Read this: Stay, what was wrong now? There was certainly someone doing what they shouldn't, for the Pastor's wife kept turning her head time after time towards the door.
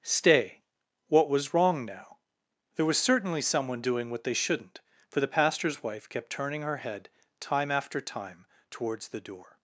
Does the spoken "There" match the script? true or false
true